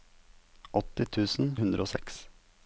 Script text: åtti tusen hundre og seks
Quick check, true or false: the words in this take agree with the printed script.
true